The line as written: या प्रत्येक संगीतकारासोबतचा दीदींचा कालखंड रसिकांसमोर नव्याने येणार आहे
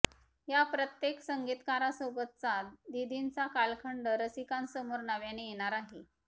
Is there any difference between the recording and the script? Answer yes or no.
no